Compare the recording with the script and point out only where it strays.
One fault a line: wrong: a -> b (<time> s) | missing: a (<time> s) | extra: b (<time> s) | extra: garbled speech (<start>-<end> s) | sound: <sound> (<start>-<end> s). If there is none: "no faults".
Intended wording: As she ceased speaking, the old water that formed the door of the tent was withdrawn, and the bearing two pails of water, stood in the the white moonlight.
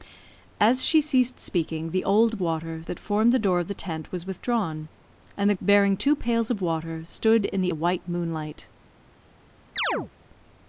sound: chirp (9.8-10.1 s)